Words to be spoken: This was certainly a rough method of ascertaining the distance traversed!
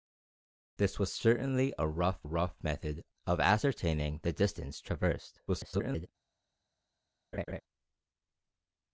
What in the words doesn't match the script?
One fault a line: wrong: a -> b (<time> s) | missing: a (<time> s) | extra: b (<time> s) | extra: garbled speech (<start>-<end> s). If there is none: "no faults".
extra: rough (2.2 s)
extra: garbled speech (5.5-6.1 s)